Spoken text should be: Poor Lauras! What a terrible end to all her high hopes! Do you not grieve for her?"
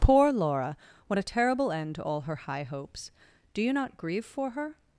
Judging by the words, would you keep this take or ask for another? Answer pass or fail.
fail